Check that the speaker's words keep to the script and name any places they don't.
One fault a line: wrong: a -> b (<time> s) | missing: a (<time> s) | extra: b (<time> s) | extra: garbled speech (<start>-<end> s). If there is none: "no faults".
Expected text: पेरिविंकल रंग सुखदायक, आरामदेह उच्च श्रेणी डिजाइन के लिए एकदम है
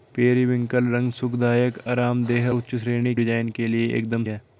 no faults